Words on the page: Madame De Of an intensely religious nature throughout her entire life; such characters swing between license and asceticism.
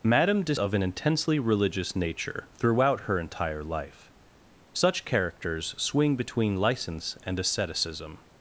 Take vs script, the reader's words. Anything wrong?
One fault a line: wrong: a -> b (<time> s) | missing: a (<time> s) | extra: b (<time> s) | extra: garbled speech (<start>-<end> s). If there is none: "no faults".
no faults